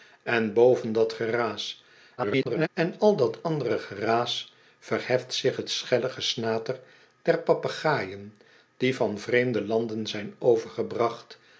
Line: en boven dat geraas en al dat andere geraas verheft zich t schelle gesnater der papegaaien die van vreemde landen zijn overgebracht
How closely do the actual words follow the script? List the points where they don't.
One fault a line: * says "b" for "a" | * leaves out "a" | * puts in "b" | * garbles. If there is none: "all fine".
* garbles